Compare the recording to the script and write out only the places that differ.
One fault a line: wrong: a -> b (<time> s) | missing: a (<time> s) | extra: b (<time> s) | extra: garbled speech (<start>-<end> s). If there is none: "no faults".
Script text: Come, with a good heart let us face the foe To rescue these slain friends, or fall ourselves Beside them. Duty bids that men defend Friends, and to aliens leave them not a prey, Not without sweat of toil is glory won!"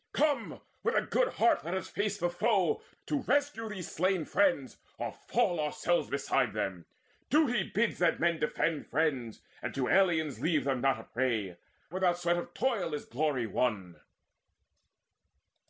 missing: Not (11.6 s)